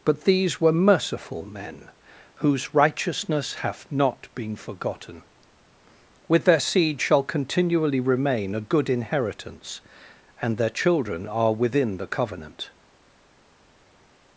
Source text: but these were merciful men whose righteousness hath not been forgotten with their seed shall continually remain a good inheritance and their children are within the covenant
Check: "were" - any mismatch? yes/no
no